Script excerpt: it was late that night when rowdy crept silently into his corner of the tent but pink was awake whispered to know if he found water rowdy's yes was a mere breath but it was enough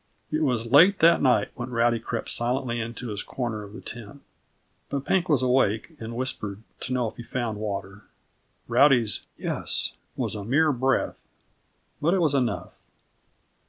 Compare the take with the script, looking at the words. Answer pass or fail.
fail